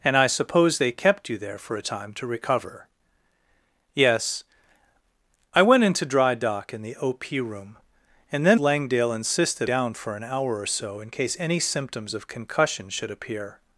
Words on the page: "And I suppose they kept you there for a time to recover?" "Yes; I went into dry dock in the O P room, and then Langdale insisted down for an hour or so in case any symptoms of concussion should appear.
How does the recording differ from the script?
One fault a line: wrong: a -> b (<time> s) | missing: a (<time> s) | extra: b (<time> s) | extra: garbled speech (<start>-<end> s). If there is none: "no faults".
no faults